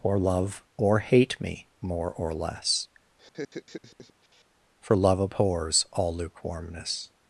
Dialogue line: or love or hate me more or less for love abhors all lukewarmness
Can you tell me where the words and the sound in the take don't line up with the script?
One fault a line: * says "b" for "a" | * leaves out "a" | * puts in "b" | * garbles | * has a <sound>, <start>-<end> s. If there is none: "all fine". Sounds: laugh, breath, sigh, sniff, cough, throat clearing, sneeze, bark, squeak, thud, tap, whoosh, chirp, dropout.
* has a laugh, 3.2-4.4 s